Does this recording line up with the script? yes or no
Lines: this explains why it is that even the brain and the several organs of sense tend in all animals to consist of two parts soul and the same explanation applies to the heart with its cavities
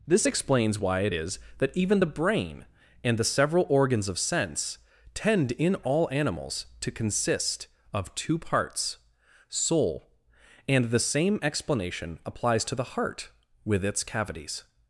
yes